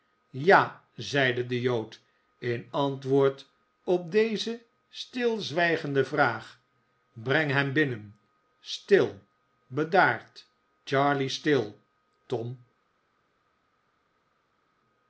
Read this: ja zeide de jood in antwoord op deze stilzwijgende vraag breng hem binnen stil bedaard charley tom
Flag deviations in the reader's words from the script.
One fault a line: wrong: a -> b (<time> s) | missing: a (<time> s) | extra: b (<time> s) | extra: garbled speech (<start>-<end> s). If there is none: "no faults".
extra: stil (11.3 s)